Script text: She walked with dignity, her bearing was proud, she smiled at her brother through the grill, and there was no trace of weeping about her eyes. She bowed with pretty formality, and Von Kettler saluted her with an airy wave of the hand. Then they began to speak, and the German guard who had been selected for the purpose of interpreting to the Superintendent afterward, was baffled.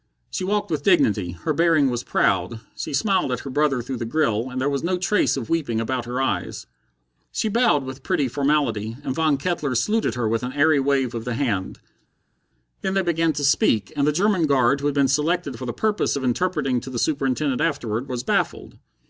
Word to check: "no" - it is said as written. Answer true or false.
true